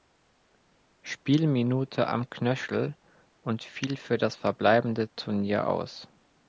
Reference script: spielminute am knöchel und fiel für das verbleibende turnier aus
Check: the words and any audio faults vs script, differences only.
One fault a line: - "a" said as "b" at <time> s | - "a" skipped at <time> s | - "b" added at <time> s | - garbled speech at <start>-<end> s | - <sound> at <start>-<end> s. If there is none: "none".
none